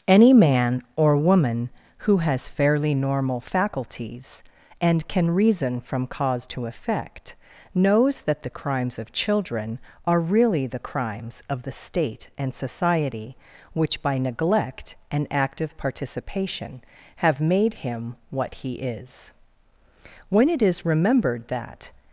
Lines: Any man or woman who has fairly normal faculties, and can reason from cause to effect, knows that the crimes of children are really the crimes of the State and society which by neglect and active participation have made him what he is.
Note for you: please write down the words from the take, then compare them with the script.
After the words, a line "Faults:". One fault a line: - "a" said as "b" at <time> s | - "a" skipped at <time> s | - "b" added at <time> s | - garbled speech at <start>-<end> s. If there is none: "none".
Any man or woman who has fairly normal faculties, and can reason from cause to effect, knows that the crimes of children are really the crimes of the State and society which by neglect and active participation have made him what he is. When it is remembered that
Faults:
- "When it is remembered that" added at 20.3 s